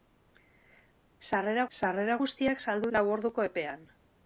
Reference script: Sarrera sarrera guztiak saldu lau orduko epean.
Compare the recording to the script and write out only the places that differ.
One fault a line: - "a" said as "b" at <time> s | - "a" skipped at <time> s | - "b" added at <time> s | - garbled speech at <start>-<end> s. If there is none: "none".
none